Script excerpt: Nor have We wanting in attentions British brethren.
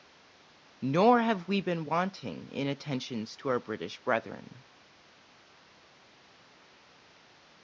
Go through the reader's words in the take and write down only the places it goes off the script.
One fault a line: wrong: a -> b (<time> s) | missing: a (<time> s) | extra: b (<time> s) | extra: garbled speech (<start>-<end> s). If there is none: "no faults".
extra: been (1.6 s)
extra: to our (3.4 s)